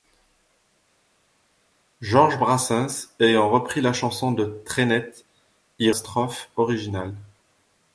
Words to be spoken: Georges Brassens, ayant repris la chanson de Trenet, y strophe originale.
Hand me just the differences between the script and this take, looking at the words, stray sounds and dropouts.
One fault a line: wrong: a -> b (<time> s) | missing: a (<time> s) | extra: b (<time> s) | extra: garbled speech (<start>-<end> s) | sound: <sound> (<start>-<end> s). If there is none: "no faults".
no faults